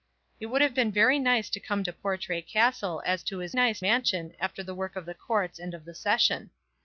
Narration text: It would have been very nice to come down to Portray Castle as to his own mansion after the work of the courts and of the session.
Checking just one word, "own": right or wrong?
wrong